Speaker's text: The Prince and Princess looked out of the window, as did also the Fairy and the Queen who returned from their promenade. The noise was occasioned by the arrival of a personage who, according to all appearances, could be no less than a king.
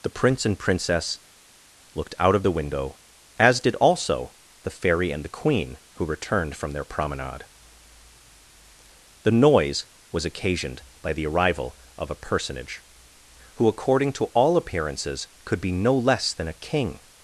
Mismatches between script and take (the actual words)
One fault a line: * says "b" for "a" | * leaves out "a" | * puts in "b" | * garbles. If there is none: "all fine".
all fine